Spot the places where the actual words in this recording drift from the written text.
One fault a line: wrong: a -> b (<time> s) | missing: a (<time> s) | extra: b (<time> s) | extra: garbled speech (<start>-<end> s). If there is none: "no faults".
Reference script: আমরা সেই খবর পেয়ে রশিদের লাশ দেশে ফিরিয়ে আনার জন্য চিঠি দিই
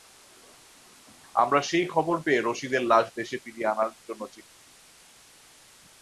no faults